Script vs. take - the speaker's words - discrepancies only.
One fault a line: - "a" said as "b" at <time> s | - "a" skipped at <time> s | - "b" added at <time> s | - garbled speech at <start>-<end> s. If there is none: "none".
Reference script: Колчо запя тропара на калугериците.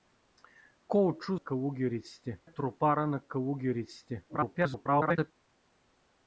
- "запя" said as "калугериците" at 1.4 s
- garbled speech at 4.3-5.3 s